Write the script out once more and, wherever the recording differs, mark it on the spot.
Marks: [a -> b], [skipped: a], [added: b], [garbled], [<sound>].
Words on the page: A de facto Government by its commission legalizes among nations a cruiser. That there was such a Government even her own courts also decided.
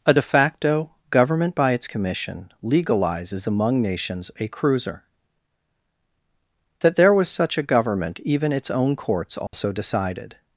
A de facto Government by its commission legalizes among nations a cruiser. That there was such a Government even [her -> its] own courts also [dropout] decided.